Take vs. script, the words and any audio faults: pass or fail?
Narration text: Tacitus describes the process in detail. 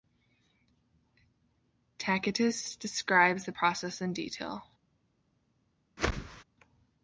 fail